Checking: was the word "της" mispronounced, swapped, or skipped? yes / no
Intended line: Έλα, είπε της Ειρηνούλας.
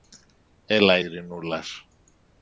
yes